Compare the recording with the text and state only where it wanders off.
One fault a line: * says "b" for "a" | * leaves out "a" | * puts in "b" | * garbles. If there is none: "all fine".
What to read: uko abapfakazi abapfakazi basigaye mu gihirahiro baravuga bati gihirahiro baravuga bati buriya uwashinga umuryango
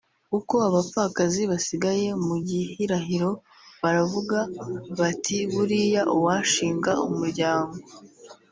* leaves out "abapfakazi"
* leaves out "gihirahiro baravuga bati"